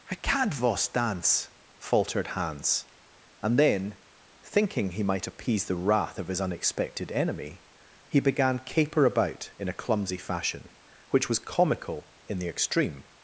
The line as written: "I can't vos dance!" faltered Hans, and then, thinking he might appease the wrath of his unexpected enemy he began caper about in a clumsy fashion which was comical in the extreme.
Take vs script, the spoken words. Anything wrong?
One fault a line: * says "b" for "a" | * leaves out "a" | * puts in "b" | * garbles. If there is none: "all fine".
all fine